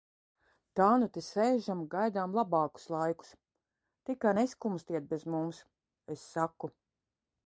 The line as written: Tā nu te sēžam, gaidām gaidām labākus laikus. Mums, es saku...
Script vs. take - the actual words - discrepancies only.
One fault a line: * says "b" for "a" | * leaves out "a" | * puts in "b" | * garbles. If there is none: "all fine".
* leaves out "gaidām"
* puts in "Tikai neskumstiet bez"